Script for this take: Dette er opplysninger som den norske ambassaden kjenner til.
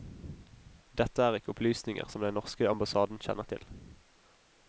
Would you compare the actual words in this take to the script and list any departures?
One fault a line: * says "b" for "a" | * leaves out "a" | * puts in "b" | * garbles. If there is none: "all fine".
* puts in "ikke"